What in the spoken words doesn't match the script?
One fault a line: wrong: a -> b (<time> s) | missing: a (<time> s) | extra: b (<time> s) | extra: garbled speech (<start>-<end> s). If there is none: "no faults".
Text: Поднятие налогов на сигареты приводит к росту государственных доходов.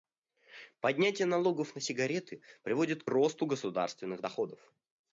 no faults